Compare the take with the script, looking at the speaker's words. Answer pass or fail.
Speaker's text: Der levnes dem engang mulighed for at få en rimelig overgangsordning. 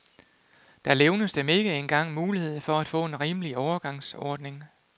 fail